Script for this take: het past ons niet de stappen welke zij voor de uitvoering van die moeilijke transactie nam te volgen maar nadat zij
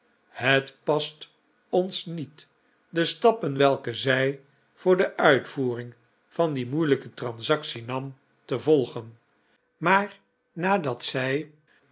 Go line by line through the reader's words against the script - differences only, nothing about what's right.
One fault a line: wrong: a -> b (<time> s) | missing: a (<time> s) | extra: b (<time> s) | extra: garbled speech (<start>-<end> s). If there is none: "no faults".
no faults